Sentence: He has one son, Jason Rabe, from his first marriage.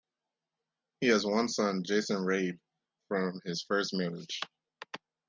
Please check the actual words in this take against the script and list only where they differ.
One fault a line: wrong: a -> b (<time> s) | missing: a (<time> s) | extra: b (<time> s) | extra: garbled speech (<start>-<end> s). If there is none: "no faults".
no faults